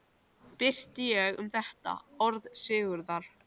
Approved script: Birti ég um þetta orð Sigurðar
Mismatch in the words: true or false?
false